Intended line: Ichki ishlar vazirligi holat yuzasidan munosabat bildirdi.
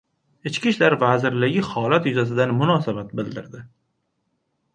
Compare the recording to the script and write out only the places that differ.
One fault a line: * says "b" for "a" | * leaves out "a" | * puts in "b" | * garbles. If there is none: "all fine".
all fine